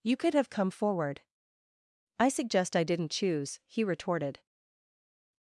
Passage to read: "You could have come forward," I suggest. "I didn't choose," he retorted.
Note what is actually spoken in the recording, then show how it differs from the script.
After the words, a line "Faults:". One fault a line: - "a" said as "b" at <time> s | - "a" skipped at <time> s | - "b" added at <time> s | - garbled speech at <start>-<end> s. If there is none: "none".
"You could have come forward," I suggest. "I didn't choose," he retorted.
Faults:
none